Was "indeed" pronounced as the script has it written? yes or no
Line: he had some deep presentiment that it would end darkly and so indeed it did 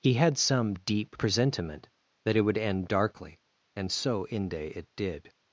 no